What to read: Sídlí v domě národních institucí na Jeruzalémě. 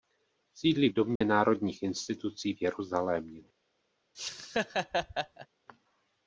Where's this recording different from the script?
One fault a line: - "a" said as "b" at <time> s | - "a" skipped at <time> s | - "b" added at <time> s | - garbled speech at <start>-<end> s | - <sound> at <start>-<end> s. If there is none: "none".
- dropout at 1.2-1.2 s
- "na" said as "v" at 2.5 s
- laugh at 4.1-5.5 s